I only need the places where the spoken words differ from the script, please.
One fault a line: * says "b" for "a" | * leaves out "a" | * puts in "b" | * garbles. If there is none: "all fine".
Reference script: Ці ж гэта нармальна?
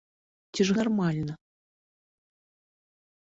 * leaves out "гэта"